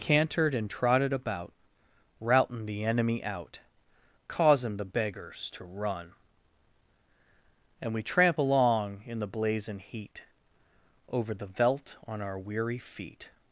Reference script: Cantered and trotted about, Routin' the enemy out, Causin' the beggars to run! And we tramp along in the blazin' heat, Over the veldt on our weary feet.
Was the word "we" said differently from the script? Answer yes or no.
no